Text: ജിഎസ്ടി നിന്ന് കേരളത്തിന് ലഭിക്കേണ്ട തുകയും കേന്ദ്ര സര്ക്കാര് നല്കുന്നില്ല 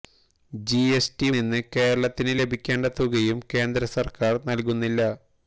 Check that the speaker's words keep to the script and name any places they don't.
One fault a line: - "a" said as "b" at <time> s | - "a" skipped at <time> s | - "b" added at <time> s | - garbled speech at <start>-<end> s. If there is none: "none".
none